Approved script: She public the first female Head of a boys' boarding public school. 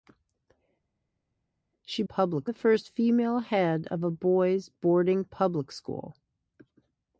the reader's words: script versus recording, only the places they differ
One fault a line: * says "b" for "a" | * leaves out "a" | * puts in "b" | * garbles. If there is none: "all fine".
all fine